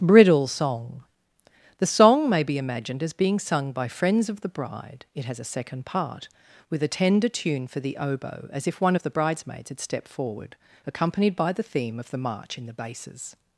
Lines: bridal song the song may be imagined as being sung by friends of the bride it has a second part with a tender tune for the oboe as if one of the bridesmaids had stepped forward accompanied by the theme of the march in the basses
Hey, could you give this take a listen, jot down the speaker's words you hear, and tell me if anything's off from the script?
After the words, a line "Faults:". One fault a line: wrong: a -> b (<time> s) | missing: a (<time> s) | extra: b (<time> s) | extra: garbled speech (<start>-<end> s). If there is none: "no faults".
bridal song the song may be imagined as being sung by friends of the bride it has a second part with a tender tune for the oboe as if one of the bridesmaids had stepped forward accompanied by the theme of the march in the basses
Faults:
no faults